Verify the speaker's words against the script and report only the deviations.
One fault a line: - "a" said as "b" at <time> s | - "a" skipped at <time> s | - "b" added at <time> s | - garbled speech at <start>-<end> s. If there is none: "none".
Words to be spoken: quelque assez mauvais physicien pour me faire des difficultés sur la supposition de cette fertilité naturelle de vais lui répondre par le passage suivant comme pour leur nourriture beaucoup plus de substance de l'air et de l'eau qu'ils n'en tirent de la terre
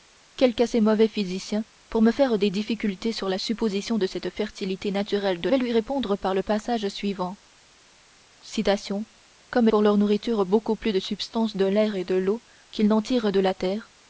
none